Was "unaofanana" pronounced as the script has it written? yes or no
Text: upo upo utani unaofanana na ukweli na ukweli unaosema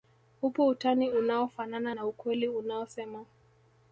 yes